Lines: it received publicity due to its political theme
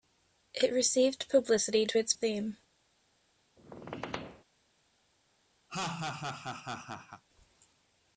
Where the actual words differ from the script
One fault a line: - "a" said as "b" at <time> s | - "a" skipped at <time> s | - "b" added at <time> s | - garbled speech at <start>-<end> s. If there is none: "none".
- "due" skipped at 1.9 s
- "political" skipped at 2.1 s